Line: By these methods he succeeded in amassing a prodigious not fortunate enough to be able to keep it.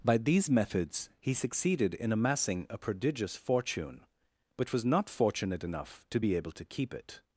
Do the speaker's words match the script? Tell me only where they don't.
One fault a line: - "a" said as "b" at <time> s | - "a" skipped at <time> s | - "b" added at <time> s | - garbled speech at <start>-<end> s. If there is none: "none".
- "fortune but was" added at 3.3 s